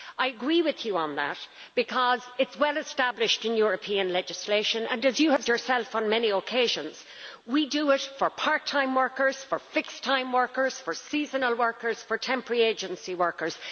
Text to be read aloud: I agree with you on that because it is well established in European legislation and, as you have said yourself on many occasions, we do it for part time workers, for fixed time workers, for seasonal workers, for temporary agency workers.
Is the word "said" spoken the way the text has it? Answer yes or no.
no